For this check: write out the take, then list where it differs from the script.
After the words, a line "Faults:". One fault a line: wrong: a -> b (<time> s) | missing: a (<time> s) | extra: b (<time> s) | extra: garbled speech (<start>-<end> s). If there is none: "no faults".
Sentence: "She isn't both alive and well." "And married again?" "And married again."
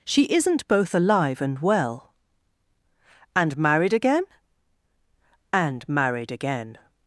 "She isn't both alive and well." "And married again?" "And married again."
Faults:
no faults